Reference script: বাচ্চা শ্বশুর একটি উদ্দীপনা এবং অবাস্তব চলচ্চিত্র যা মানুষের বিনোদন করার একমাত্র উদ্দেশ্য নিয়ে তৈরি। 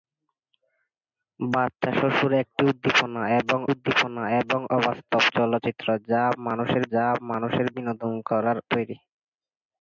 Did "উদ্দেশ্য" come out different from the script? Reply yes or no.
yes